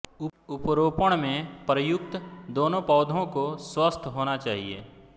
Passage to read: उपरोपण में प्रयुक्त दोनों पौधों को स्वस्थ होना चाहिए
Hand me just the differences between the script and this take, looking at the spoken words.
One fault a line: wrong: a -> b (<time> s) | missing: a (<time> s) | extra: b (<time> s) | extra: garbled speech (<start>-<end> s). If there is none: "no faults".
no faults